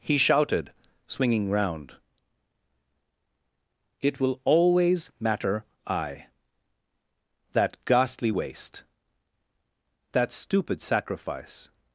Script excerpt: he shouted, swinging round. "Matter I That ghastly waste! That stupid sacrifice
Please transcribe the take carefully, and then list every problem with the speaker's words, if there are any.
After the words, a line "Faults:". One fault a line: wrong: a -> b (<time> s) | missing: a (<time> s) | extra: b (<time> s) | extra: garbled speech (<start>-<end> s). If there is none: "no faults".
he shouted, swinging round. "It will always matter I That ghastly waste! That stupid sacrifice
Faults:
extra: It will always (4.0 s)